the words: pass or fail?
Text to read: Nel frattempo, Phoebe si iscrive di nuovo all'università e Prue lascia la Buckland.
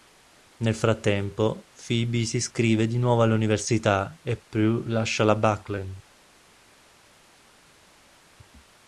pass